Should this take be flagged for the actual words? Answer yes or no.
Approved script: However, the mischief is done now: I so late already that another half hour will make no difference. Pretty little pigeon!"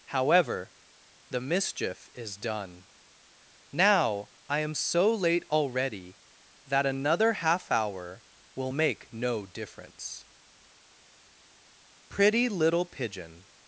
yes